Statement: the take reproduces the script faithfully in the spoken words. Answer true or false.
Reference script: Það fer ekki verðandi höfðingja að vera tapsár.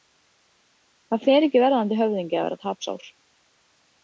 true